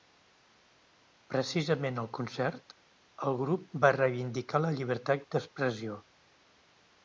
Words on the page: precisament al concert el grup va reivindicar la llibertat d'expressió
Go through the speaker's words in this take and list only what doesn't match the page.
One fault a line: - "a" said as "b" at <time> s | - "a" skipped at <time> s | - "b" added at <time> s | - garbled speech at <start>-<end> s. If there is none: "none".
none